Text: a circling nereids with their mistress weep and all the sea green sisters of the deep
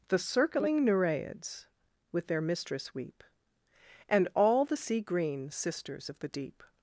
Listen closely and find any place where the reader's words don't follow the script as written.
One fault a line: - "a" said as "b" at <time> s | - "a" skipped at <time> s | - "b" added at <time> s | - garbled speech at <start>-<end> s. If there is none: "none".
- "a" said as "the" at 0.1 s